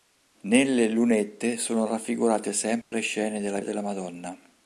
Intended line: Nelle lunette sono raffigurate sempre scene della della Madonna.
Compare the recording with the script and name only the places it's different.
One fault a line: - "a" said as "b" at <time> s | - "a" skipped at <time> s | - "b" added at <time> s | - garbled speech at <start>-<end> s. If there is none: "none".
none